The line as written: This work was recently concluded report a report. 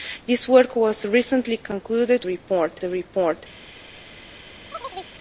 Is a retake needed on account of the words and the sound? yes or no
yes